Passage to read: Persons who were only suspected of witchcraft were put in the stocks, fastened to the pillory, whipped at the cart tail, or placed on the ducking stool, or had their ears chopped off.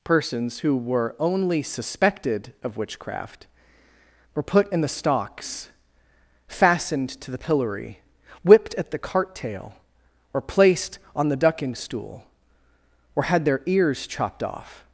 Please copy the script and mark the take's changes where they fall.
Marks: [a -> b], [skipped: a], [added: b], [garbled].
Persons who were only suspected of witchcraft were put in the stocks, fastened to the pillory, whipped at the cart tail, or placed on the ducking stool, or had their ears chopped off.